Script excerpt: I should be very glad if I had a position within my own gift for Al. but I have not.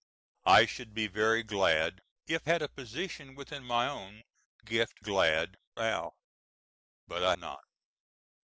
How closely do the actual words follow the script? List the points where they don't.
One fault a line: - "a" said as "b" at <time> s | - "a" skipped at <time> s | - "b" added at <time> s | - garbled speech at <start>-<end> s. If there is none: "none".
- "I" skipped at 2.5 s
- "for" said as "glad" at 5.0 s
- "have" skipped at 7.3 s